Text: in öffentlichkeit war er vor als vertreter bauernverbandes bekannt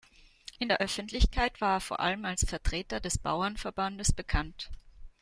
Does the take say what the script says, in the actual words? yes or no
no